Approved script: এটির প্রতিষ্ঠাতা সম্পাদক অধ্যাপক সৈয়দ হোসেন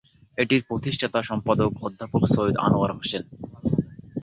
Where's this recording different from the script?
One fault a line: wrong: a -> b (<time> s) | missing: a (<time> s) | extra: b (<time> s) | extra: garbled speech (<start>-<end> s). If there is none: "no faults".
extra: আনোয়ার (2.6 s)